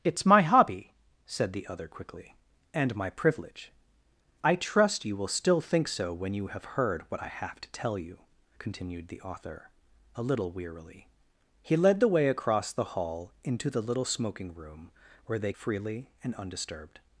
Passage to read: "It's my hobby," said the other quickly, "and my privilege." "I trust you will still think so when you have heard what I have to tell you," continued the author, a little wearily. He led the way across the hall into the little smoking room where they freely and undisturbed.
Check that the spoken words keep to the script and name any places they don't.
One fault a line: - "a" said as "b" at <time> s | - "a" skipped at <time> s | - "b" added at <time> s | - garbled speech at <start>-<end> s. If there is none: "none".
none